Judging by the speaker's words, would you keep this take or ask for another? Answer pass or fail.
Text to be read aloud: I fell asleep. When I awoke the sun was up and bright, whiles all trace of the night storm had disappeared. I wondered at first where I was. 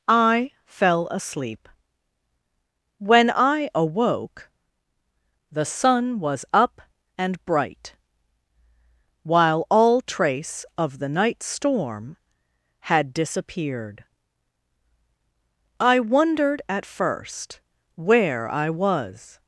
fail